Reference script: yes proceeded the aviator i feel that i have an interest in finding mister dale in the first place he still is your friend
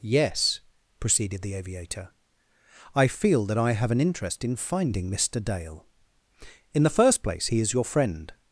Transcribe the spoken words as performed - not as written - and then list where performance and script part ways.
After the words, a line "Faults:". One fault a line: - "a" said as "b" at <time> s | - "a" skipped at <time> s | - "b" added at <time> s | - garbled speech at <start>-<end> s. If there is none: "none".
yes proceeded the aviator i feel that i have an interest in finding mister dale in the first place he is your friend
Faults:
- "still" skipped at 7.6 s